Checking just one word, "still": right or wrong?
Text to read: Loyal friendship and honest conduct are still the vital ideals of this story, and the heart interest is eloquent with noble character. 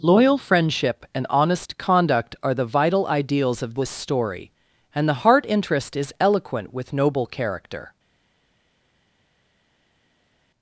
wrong